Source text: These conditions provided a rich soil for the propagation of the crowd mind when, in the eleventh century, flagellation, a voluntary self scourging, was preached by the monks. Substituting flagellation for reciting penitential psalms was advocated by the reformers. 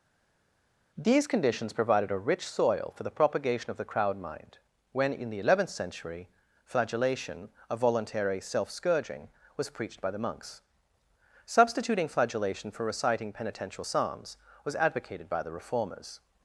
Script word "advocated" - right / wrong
right